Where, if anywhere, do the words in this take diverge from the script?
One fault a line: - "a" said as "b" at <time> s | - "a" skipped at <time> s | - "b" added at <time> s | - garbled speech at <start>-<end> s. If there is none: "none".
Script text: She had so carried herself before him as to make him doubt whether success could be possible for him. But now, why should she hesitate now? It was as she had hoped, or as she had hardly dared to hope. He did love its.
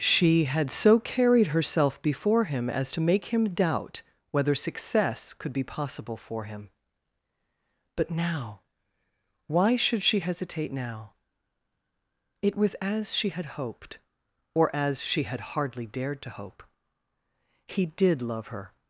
- "its" said as "her" at 18.5 s